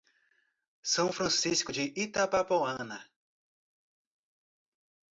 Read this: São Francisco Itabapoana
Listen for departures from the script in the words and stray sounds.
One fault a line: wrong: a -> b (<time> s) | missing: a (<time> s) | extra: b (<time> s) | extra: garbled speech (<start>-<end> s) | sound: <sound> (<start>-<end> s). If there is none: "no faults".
extra: de (1.7 s)